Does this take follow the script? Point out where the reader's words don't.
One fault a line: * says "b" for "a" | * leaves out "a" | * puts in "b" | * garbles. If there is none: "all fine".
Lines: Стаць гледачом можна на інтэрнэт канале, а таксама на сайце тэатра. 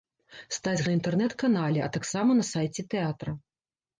* leaves out "гледачом можна"